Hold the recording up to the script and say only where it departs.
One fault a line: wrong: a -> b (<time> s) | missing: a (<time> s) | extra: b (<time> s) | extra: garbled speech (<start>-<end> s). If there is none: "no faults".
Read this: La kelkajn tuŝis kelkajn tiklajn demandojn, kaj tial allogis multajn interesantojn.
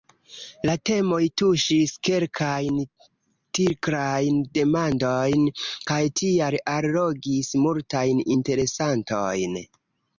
wrong: kelkajn -> temoj (0.9 s)